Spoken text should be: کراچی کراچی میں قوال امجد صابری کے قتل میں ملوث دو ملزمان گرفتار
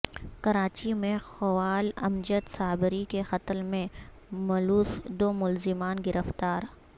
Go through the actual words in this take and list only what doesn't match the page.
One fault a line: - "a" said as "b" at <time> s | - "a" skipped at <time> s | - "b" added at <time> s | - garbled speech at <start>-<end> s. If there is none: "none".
- "کراچی" skipped at 0.9 s